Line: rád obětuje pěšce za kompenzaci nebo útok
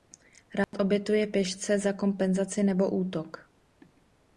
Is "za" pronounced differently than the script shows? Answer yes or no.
no